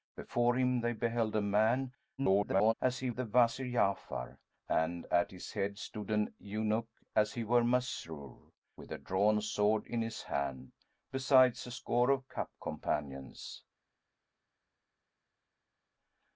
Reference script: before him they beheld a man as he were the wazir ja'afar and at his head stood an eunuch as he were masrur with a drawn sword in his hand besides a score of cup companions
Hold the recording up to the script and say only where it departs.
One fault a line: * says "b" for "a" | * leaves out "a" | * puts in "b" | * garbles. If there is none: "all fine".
* garbles
* leaves out "were"